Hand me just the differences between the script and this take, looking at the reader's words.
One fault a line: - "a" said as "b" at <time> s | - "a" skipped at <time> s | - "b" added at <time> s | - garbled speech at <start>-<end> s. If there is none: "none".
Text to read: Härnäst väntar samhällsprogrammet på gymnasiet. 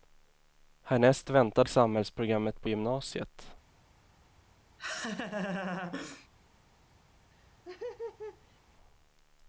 none